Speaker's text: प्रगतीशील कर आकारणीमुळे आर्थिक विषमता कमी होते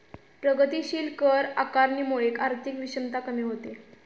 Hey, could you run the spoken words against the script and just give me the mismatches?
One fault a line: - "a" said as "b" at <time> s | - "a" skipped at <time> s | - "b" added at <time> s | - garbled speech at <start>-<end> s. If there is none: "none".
none